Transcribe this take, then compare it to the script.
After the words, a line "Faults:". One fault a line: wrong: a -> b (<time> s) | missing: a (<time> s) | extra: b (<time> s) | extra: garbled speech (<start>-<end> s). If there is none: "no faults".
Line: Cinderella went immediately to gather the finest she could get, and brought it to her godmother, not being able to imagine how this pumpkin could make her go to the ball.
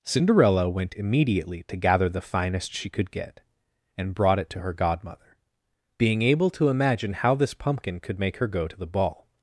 Cinderella went immediately to gather the finest she could get, and brought it to her godmother, being able to imagine how this pumpkin could make her go to the ball.
Faults:
missing: not (5.4 s)